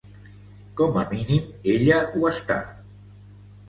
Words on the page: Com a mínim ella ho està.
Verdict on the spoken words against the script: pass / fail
pass